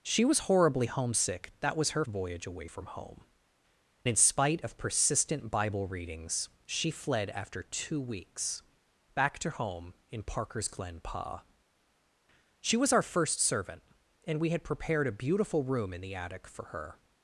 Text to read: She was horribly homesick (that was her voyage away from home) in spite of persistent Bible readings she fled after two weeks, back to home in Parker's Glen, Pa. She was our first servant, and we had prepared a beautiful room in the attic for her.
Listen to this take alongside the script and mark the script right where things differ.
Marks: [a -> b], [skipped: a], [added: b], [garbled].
She was horribly homesick (that was her voyage away from home) in spite of persistent Bible readings she fled after two weeks, back to home in Parker's Glen, Pa. She was our first servant, and we had prepared a beautiful room in the attic for her.